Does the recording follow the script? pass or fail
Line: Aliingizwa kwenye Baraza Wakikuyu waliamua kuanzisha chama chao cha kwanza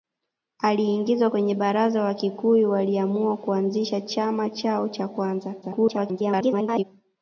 fail